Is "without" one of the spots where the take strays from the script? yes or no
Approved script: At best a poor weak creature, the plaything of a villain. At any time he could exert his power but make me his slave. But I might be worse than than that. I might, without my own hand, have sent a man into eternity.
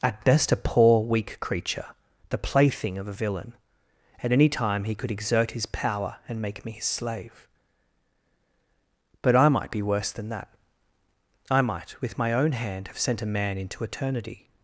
yes